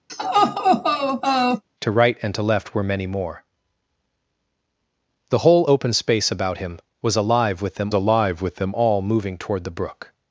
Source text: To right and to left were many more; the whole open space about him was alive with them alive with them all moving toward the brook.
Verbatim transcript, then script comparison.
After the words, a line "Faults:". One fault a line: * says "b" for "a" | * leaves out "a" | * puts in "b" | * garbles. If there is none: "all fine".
To right and to left were many more; the whole open space about him was alive with them alive with them all moving toward the brook.
Faults:
all fine